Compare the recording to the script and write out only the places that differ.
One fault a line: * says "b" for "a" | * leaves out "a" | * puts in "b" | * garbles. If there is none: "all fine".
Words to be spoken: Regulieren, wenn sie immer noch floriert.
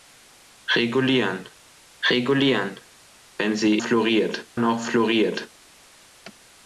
* puts in "regulieren"
* says "floriert" for "immer"